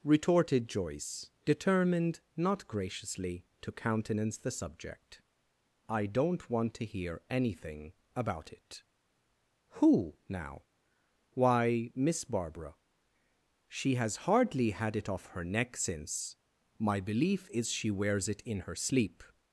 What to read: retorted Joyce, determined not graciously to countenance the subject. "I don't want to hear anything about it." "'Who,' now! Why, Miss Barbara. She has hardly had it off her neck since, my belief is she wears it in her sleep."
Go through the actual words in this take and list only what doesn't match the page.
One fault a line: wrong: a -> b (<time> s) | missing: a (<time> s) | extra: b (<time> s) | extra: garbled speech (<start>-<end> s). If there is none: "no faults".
no faults